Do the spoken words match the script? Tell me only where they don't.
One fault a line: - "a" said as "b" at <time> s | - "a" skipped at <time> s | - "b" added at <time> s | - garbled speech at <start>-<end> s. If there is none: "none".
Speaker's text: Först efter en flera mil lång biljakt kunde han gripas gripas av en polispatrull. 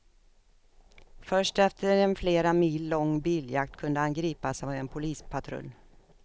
- "gripas" skipped at 4.6 s